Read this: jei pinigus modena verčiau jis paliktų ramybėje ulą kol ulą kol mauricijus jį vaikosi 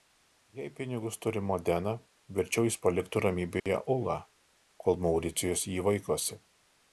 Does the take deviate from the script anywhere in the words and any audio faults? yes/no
yes